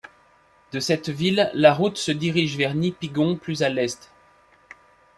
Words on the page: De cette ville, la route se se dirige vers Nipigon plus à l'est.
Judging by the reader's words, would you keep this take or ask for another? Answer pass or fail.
fail